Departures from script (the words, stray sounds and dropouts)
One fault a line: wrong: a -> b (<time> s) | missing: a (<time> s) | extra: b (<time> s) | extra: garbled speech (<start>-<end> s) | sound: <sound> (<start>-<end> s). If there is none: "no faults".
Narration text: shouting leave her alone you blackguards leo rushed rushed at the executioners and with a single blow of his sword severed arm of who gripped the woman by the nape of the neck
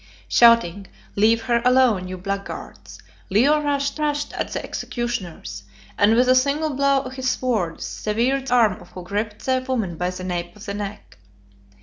no faults